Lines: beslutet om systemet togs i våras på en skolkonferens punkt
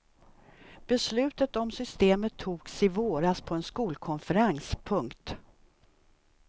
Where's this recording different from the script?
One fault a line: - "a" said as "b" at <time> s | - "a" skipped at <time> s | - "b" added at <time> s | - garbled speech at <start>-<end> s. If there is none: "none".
none